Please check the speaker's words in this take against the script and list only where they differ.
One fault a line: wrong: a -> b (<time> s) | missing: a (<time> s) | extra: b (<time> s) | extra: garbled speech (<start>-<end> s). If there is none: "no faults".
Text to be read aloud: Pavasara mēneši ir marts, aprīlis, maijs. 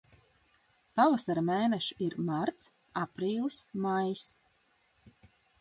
no faults